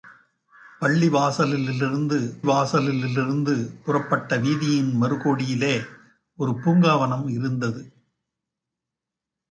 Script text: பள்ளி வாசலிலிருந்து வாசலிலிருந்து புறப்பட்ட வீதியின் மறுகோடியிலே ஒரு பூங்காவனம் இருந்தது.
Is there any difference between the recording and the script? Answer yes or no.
no